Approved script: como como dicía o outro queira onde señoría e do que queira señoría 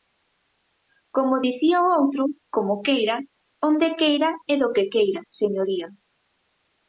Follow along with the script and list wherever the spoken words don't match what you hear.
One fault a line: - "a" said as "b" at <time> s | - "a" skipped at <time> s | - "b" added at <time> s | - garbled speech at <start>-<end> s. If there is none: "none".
- "como" skipped at 1.4 s
- "como" added at 2.5 s
- "señoría" said as "queira" at 4.0 s